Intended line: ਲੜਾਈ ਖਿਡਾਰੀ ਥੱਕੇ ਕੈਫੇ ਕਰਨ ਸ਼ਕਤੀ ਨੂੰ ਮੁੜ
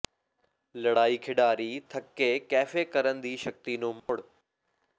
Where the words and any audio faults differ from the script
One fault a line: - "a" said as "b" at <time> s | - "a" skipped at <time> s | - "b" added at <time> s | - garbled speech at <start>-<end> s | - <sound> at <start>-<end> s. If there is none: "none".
- "ਦੀ" added at 3.2 s
- dropout at 4.0-4.1 s